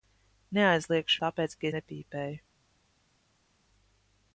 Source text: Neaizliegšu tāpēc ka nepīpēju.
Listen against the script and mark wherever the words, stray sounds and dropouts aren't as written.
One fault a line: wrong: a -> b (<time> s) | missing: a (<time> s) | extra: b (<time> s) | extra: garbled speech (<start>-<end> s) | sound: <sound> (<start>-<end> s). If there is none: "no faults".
no faults